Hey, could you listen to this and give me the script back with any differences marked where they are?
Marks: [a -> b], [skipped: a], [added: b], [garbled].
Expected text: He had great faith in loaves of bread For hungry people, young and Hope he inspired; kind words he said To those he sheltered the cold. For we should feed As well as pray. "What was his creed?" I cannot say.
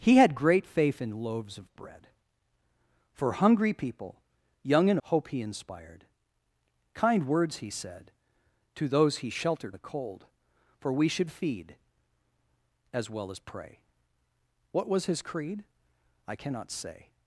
He had great faith in loaves of bread For hungry people, young and Hope he inspired; kind words he said To those he sheltered the cold. For we should feed As well as pray. "What was his creed?" I cannot say.